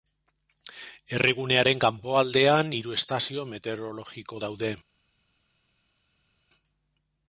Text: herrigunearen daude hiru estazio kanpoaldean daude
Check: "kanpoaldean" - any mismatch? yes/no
yes